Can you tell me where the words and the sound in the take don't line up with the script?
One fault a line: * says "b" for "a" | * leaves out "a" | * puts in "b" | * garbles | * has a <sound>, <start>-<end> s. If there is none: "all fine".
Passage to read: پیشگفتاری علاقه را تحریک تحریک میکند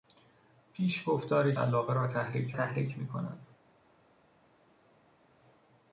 all fine